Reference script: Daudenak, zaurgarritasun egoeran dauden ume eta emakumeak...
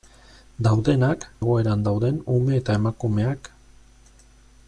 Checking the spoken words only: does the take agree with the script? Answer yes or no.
no